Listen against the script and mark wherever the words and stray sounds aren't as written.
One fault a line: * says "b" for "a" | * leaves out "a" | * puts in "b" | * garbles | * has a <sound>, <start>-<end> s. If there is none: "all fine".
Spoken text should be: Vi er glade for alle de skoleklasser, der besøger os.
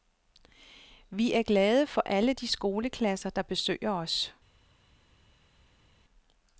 all fine